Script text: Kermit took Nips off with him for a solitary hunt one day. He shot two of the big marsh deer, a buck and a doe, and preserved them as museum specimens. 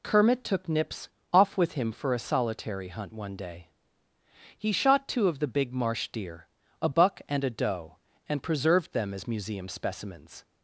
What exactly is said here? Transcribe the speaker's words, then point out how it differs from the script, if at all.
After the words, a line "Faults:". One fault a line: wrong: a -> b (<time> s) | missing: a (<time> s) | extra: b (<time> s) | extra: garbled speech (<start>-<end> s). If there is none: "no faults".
Kermit took Nips off with him for a solitary hunt one day. He shot two of the big marsh deer, a buck and a doe, and preserved them as museum specimens.
Faults:
no faults